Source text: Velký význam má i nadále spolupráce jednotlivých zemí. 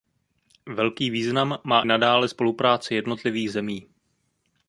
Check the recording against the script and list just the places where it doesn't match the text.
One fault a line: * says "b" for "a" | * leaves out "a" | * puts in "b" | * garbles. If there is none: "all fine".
* leaves out "i"